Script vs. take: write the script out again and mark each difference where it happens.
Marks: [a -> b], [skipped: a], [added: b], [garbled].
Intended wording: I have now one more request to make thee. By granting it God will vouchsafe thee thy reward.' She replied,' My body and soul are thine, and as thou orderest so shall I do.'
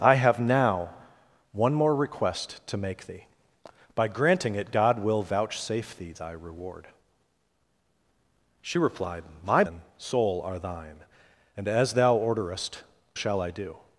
I have now one more request to make thee. By granting it God will vouchsafe thee thy reward.' She replied,' My [skipped: body] and soul are thine, and as thou orderest [skipped: so] shall I do.'